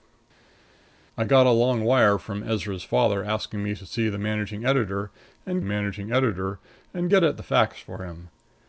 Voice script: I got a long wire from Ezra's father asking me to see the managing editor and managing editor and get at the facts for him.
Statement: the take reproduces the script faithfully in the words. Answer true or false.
true